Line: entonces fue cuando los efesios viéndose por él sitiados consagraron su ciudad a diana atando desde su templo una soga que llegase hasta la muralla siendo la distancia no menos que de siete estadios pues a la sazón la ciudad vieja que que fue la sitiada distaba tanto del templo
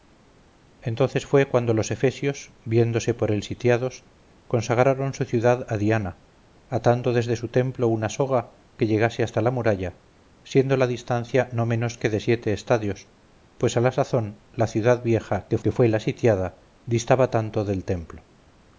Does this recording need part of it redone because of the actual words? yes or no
no